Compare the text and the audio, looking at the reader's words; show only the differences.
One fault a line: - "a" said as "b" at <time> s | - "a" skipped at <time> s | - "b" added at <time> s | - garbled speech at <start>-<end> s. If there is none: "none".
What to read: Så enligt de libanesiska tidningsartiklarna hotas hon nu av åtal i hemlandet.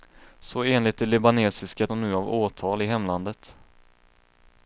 - "tidningsartiklarna hotas" skipped at 1.9 s